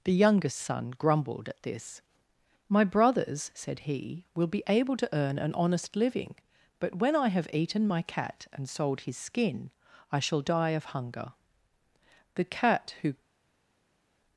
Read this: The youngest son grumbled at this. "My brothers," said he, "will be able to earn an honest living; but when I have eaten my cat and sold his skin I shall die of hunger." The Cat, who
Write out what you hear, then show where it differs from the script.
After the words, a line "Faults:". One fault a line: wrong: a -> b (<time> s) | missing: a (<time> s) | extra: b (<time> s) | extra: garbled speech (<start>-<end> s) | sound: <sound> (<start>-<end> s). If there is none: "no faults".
The youngest son grumbled at this. "My brothers," said he, "will be able to earn an honest living; but when I have eaten my cat and sold his skin I shall die of hunger." The Cat, who
Faults:
no faults